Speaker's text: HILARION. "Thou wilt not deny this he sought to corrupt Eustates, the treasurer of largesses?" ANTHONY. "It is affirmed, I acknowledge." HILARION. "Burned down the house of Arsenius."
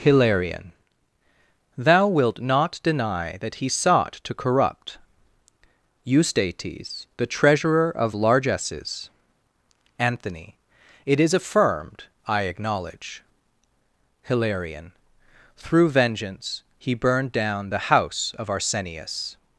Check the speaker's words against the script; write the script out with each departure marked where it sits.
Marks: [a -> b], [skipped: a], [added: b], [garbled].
HILARION. "Thou wilt not deny [this -> that] he sought to corrupt Eustates, the treasurer of largesses?" ANTHONY. "It is affirmed, I acknowledge." HILARION. [added: Through vengeance he] "Burned down the house of Arsenius."